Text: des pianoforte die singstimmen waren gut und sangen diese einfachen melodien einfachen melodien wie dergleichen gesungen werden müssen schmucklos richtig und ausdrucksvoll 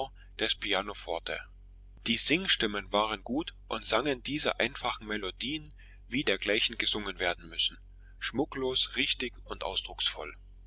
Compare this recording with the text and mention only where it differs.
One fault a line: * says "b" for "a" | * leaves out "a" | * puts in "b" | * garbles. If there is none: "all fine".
* leaves out "einfachen melodien"